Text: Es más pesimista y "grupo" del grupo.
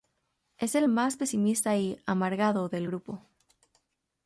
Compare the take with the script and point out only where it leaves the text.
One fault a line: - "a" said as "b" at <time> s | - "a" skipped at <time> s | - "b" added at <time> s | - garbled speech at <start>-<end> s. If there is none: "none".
- "el" added at 0.7 s
- "grupo" said as "amargado" at 2.1 s